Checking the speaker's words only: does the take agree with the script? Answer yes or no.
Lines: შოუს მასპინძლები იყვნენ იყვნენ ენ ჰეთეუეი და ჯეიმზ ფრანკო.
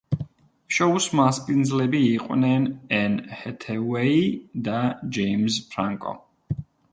no